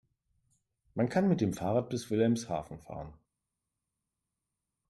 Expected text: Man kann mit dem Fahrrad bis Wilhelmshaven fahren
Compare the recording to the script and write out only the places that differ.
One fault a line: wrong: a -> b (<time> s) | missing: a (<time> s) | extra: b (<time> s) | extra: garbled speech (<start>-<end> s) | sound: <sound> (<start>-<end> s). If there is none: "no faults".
no faults